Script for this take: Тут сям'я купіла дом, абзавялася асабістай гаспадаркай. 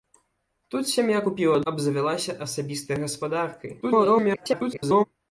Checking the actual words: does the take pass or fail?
fail